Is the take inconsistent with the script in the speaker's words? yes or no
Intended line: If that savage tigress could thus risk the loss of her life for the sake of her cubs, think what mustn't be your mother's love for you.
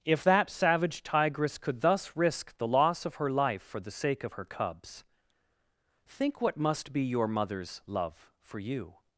yes